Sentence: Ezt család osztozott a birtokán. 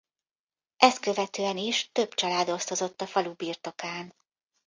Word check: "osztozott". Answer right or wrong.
right